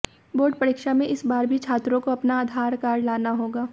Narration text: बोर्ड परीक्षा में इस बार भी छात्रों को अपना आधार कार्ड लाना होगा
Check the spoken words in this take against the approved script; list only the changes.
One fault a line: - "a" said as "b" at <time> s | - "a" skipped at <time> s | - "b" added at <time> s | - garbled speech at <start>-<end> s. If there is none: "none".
none